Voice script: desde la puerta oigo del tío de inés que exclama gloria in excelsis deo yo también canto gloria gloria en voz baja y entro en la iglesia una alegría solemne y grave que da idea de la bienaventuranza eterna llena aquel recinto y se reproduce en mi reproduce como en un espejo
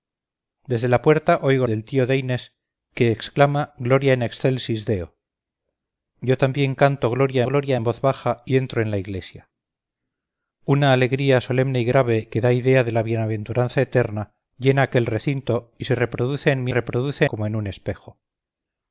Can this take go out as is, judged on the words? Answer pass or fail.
pass